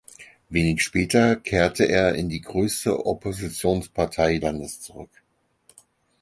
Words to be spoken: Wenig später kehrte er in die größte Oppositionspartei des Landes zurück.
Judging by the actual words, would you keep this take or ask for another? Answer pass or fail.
fail